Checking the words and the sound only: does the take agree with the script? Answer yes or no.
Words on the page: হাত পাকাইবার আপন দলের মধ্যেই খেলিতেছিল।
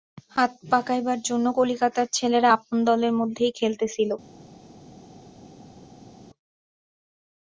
no